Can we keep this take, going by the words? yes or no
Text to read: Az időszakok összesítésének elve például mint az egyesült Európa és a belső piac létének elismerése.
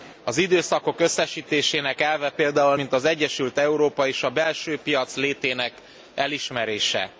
yes